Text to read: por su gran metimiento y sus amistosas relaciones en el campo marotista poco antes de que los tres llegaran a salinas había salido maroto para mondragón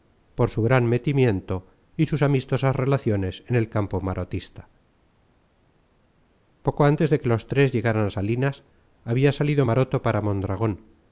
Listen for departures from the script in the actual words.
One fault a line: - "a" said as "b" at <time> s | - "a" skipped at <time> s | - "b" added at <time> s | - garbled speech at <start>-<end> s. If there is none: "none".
none